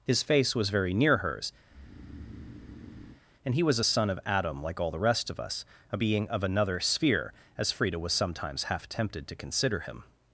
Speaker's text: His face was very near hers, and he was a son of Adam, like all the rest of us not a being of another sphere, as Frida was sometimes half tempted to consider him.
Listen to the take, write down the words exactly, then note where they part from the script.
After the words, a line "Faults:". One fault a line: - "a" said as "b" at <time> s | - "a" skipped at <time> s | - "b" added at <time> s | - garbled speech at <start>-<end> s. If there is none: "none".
His face was very near hers, and he was a son of Adam, like all the rest of us a being of another sphere, as Frida was sometimes half tempted to consider him.
Faults:
- "not" skipped at 5.6 s